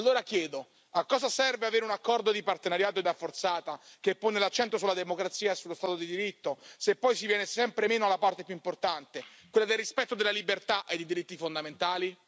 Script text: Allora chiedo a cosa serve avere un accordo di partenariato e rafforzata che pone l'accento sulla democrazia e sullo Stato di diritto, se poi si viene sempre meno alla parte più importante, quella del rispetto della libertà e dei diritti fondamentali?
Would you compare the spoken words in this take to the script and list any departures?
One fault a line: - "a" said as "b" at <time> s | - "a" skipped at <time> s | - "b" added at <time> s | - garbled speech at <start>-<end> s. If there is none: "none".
none